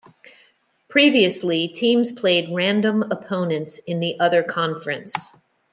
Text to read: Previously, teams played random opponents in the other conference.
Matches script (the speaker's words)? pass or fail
pass